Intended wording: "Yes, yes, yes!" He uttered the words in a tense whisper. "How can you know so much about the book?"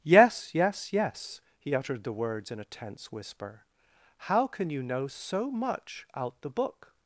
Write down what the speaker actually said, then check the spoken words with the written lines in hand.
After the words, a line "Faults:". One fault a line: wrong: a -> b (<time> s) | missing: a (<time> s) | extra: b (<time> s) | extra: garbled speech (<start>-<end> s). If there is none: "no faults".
"Yes, yes, yes!" He uttered the words in a tense whisper. "How can you know so much out the book?"
Faults:
wrong: about -> out (6.2 s)